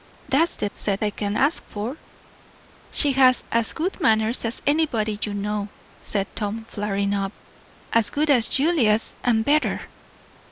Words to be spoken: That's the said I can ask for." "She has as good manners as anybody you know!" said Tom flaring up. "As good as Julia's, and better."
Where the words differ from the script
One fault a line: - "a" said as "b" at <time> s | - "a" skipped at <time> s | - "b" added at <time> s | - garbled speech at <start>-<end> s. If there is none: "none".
none